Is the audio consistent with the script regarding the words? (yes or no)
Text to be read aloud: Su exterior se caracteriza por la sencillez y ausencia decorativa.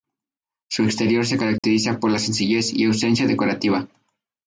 yes